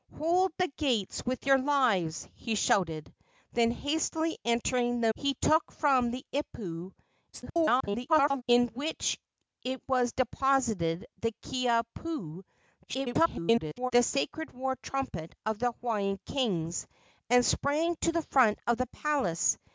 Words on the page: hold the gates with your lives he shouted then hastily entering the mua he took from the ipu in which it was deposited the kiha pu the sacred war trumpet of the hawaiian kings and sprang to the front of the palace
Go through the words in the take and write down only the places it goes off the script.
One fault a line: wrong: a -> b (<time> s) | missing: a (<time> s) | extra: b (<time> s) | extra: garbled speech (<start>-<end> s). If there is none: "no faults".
missing: mua (5.1 s)
extra: garbled speech (7.3-8.4 s)
extra: garbled speech (12.9-13.9 s)